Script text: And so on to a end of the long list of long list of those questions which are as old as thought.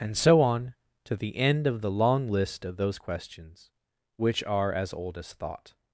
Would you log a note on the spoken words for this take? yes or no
yes